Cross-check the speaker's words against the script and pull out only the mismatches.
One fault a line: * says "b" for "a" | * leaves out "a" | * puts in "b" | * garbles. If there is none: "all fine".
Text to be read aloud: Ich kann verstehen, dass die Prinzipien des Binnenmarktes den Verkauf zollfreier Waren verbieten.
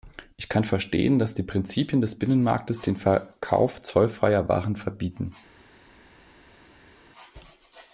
all fine